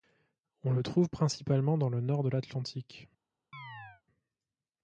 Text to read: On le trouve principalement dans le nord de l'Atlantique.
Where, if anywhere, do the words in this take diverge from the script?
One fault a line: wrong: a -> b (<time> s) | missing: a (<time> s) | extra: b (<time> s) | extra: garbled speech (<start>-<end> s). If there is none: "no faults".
no faults